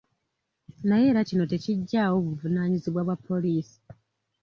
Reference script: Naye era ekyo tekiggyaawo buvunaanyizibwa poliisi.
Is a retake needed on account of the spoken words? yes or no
yes